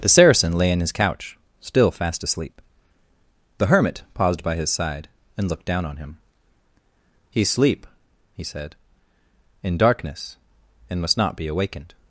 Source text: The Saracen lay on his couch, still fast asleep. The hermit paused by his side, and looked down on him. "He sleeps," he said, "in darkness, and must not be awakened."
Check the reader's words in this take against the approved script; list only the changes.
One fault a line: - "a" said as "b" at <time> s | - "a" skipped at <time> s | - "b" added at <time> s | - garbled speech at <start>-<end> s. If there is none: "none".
- "on" said as "in" at 0.7 s
- "sleeps" said as "sleep" at 7.5 s